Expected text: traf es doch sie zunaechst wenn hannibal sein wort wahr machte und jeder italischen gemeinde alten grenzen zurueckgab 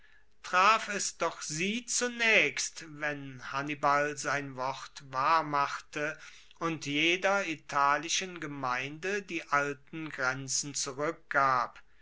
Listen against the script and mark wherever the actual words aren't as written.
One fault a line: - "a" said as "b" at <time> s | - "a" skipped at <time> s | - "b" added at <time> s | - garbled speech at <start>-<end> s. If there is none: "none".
- "die" added at 9.2 s